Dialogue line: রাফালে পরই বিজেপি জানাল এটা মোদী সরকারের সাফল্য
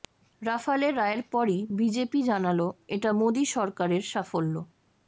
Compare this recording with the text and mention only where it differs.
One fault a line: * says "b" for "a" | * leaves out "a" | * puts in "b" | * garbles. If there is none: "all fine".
* puts in "রায়ের"